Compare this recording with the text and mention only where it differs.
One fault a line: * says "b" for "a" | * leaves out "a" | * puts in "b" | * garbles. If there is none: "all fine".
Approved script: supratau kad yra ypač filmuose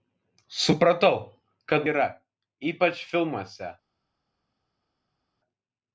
all fine